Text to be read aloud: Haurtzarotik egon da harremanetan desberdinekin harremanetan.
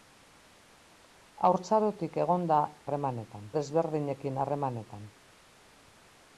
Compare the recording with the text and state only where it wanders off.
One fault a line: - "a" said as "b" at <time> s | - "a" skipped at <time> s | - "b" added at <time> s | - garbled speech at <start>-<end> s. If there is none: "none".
none